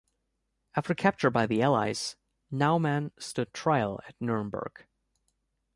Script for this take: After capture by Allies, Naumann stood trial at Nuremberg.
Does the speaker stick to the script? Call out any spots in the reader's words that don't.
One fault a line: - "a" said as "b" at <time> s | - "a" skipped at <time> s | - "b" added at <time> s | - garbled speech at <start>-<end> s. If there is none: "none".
- "the" added at 1.4 s